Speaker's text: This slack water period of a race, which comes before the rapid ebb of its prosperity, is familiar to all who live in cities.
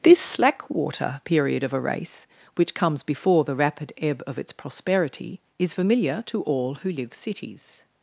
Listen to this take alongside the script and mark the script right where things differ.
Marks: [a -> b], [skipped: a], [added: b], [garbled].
This slack water period of a race, which comes before the rapid ebb of its prosperity, is familiar to all who live [skipped: in] cities.